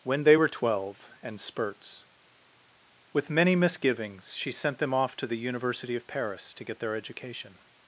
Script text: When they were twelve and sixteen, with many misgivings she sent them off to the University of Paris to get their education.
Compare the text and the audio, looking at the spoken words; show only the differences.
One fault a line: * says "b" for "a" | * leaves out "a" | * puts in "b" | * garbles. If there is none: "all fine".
* says "spurts" for "sixteen"